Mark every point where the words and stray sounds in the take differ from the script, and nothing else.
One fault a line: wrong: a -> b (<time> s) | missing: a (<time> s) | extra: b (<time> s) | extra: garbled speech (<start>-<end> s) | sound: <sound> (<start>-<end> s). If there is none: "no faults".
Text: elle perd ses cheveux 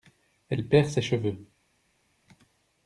no faults